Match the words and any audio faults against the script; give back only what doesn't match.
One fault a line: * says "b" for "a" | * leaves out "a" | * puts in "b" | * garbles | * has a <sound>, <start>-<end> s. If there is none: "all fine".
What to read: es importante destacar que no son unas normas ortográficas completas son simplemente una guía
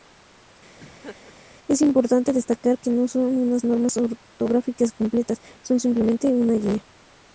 * has a laugh, 0.8-1.4 s